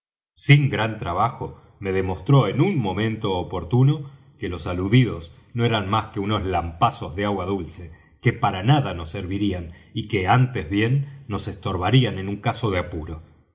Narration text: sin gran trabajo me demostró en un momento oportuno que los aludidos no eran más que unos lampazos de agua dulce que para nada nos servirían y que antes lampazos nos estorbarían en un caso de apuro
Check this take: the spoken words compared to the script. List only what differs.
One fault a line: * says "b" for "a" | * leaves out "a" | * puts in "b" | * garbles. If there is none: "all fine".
* says "bien" for "lampazos"